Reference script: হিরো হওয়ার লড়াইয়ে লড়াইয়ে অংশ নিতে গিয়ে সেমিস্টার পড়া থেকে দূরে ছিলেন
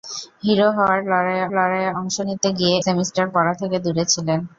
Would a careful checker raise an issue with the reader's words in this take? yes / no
no